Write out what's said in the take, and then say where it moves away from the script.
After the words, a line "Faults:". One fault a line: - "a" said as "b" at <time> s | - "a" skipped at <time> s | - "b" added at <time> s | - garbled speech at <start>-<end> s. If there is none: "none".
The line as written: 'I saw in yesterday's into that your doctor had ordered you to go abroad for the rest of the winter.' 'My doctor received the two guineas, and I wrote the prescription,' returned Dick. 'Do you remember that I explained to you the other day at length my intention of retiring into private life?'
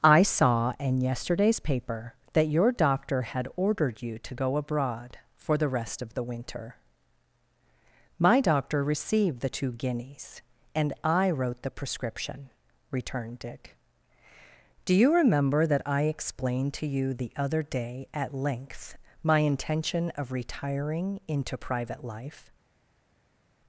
'I saw in yesterday's paper that your doctor had ordered you to go abroad for the rest of the winter.' 'My doctor received the two guineas, and I wrote the prescription,' returned Dick. 'Do you remember that I explained to you the other day at length my intention of retiring into private life?'
Faults:
- "into" said as "paper" at 1.6 s